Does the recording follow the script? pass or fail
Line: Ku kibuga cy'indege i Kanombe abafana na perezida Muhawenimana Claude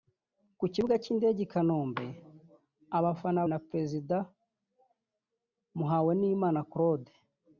pass